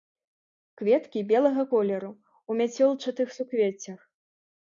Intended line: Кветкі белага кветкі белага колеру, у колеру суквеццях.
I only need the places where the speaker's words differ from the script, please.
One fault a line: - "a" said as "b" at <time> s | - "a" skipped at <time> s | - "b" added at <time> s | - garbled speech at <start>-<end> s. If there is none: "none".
- "кветкі белага" skipped at 1.6 s
- "колеру" said as "мяцёлчатых" at 2.6 s